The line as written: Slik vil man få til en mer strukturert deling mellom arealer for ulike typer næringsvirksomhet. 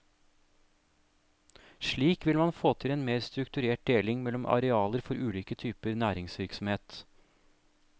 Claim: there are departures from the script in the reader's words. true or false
false